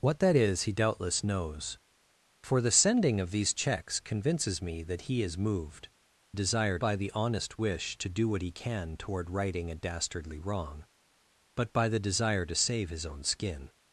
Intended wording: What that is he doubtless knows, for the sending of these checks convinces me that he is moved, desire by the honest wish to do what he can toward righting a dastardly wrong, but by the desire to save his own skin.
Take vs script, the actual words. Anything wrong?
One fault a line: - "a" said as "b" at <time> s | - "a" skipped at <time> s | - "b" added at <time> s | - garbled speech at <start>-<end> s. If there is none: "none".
none